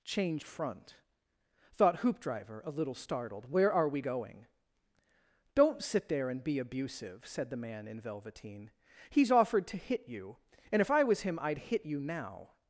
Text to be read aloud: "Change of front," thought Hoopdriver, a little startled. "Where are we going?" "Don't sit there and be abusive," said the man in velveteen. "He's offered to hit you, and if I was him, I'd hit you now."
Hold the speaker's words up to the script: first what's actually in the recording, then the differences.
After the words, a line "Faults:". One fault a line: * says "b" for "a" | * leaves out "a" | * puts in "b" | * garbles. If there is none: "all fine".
"Change front," thought Hoopdriver, a little startled. "Where are we going?" "Don't sit there and be abusive," said the man in velveteen. "He's offered to hit you, and if I was him, I'd hit you now."
Faults:
* leaves out "of"